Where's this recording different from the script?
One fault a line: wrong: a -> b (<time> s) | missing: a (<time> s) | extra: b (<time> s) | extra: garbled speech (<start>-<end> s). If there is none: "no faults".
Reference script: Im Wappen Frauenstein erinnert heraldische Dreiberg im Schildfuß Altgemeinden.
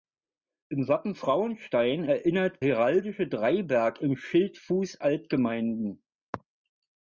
no faults